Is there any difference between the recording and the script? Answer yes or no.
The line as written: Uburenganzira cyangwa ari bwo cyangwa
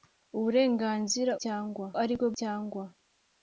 no